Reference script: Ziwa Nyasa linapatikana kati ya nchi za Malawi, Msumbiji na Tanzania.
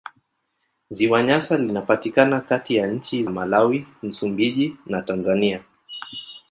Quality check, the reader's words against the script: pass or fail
fail